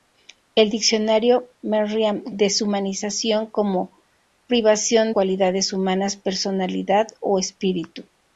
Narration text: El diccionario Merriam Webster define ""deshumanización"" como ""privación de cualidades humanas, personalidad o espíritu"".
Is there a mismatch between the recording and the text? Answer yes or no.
yes